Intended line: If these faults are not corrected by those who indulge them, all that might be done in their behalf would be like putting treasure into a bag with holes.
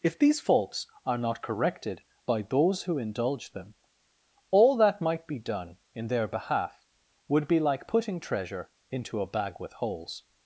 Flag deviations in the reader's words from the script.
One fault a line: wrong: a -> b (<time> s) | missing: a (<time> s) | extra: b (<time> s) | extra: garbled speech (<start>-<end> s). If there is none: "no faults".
no faults